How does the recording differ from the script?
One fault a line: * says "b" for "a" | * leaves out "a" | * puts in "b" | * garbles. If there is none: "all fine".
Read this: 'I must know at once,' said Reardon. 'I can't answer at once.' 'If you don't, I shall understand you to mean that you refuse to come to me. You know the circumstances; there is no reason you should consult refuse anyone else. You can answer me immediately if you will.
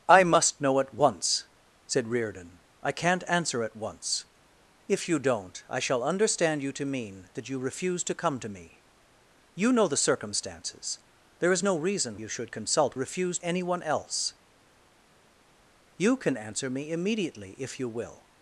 all fine